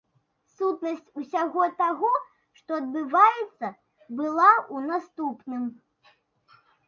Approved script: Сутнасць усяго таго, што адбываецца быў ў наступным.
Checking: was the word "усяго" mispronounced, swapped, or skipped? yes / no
no